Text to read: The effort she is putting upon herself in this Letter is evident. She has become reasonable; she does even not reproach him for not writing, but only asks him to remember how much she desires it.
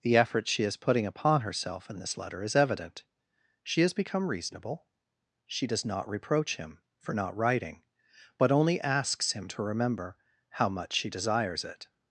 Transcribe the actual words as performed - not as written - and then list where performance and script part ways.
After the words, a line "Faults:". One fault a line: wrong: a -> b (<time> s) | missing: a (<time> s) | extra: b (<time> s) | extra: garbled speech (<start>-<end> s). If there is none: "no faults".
The effort she is putting upon herself in this Letter is evident. She has become reasonable; she does not reproach him for not writing, but only asks him to remember how much she desires it.
Faults:
missing: even (5.8 s)